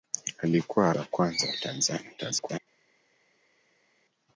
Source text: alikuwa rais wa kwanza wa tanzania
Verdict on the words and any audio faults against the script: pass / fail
fail